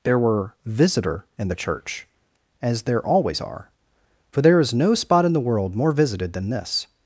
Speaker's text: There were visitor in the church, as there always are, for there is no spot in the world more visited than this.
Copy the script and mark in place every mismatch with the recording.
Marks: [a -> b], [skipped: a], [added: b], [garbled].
There were visitor in the church, as there always are, for there is no spot in the world more visited than this.